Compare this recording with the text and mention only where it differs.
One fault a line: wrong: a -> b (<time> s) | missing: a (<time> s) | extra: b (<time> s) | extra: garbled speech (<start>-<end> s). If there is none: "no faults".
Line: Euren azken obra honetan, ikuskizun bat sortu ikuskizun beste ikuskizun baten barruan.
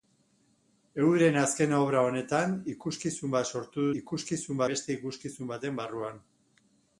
no faults